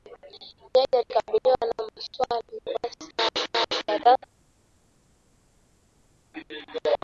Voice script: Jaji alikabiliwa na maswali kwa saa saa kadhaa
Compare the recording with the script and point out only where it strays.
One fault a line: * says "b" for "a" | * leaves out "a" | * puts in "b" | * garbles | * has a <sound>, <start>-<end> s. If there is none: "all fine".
all fine